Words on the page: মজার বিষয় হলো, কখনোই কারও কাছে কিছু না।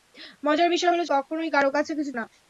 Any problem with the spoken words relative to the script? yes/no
no